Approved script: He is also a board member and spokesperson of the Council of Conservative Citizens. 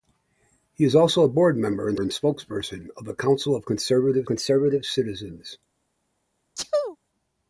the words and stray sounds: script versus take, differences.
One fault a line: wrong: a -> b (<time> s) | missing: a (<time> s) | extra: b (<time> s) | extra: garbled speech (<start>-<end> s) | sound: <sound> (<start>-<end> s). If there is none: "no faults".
extra: and (2.0 s)
extra: Conservative (4.3 s)
sound: sneeze (6.5-7.0 s)